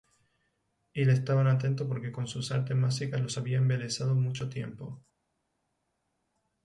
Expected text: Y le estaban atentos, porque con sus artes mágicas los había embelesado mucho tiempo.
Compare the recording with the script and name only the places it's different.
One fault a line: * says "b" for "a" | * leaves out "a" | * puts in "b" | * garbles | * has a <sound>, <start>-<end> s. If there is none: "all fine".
all fine